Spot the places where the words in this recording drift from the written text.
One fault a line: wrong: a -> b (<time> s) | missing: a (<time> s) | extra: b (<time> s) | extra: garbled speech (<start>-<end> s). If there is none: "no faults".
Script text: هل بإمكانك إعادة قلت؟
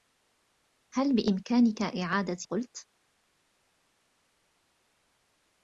no faults